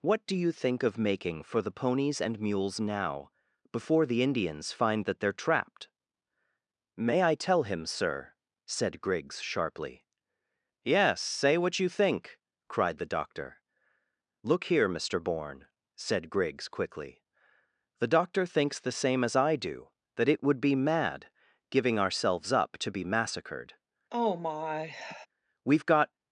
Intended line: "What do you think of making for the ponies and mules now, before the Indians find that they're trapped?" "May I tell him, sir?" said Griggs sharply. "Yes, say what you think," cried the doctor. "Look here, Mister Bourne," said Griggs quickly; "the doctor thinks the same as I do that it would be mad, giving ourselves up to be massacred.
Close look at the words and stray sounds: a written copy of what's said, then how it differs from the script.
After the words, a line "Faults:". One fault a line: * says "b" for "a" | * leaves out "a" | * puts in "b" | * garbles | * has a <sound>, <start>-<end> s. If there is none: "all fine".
"What do you think of making for the ponies and mules now, before the Indians find that they're trapped?" "May I tell him, sir?" said Griggs sharply. "Yes, say what you think," cried the doctor. "Look here, Mister Bourne," said Griggs quickly; "the doctor thinks the same as I do that it would be mad, giving ourselves up to be massacred. We've got
Faults:
* has a sigh, 24.1-25.3 s
* puts in "We've got"